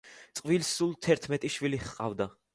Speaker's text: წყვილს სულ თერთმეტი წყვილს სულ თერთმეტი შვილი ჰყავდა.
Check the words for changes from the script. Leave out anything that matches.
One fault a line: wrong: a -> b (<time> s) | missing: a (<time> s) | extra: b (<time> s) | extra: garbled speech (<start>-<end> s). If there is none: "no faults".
missing: წყვილს სულ თერთმეტი (1.5 s)